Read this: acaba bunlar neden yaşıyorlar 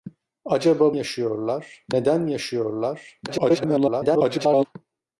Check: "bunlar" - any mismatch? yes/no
yes